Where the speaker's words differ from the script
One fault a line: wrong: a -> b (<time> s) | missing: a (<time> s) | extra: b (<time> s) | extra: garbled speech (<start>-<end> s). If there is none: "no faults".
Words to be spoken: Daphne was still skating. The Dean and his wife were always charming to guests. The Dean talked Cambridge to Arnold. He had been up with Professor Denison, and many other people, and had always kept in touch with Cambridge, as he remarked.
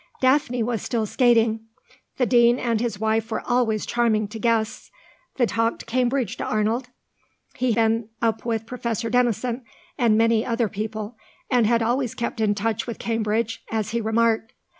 missing: Dean (5.4 s)
missing: had (7.7 s)